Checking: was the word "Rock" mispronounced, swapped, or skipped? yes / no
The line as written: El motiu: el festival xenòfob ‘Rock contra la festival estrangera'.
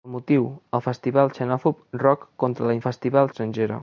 no